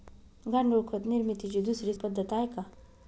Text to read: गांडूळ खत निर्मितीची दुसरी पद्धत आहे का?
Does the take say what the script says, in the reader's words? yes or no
yes